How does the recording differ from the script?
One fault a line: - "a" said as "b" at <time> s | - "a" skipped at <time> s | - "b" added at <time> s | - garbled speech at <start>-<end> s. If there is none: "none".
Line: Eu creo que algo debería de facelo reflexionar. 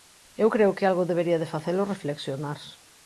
none